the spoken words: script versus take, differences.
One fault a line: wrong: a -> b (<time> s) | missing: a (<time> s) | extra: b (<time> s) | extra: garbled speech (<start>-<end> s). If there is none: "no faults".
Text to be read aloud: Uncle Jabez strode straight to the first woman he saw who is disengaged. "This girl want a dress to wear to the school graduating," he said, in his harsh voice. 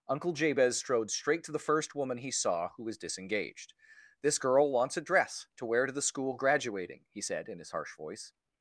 wrong: is -> was (2.8 s)
wrong: want -> wants (4.7 s)